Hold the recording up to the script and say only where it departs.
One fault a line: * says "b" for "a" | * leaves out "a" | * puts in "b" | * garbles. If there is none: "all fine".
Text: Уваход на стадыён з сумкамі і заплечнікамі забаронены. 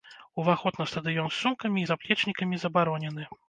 all fine